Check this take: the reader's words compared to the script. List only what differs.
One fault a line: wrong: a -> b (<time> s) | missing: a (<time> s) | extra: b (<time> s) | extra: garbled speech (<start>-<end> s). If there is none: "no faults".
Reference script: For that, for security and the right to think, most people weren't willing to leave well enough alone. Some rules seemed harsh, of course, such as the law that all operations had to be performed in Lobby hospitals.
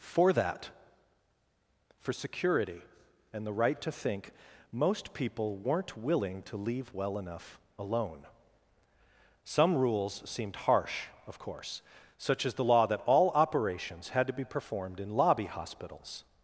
no faults